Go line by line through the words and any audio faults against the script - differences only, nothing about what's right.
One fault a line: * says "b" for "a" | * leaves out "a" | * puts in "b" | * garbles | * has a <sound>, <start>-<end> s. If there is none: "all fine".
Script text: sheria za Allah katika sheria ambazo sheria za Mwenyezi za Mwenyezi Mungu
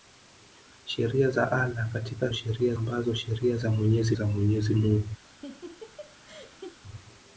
* has a laugh, 5.2-6.8 s